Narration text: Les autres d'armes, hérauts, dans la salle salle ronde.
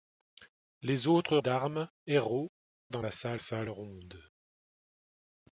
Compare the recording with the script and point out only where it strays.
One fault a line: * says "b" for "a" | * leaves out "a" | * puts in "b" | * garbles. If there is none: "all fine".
all fine